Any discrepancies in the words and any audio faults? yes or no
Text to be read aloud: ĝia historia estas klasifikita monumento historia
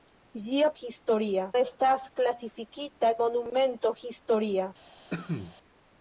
yes